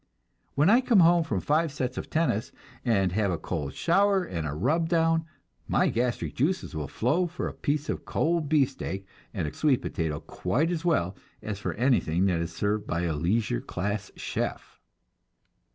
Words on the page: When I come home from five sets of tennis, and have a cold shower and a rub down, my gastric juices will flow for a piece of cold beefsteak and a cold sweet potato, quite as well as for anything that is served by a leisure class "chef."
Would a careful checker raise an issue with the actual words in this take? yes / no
yes